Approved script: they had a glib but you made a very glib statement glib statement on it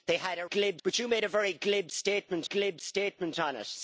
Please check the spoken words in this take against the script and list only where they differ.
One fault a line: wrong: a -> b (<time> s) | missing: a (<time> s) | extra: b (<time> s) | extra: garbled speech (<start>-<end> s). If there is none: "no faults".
no faults